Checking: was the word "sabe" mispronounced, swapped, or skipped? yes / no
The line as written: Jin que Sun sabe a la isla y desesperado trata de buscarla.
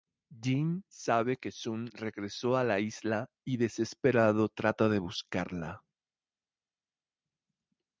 yes